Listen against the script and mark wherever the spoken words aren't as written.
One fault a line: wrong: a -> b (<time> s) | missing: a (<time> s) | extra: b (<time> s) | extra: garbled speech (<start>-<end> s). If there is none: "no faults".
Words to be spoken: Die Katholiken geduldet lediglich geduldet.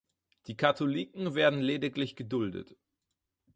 wrong: geduldet -> werden (1.4 s)